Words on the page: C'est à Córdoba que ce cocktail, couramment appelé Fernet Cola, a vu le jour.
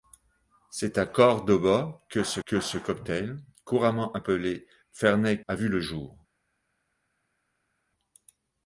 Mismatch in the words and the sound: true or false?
true